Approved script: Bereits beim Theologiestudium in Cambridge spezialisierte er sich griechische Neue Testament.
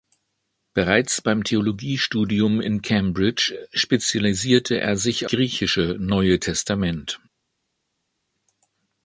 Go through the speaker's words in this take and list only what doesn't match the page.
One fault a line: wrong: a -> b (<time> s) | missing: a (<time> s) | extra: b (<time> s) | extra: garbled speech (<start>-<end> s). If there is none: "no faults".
no faults